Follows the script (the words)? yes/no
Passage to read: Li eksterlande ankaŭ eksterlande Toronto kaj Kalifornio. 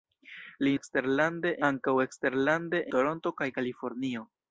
yes